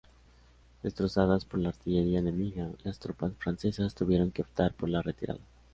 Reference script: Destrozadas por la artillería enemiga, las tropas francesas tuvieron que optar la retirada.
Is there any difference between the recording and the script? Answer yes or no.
yes